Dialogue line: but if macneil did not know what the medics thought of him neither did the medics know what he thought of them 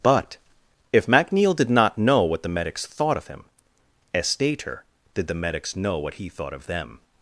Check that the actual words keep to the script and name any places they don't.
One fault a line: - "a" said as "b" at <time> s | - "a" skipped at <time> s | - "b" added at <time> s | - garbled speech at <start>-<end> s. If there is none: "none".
- "neither" said as "estater" at 4.2 s